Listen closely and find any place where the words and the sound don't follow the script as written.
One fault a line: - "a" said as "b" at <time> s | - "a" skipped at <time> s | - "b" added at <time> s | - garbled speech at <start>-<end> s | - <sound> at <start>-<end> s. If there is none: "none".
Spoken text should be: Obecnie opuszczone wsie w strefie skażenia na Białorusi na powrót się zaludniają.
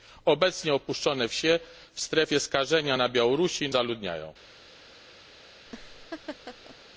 - "na powrót się" skipped at 3.7 s
- laugh at 5.7-6.8 s